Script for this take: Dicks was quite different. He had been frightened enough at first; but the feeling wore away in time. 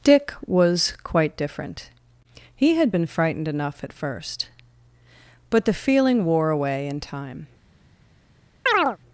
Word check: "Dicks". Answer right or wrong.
wrong